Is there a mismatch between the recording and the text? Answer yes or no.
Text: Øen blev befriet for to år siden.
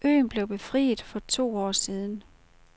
no